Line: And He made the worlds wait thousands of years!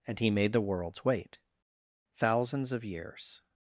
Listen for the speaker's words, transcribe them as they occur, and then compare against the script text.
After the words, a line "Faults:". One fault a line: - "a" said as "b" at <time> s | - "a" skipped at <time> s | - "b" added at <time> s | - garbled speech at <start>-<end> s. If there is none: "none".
And He made the worlds wait thousands of years!
Faults:
none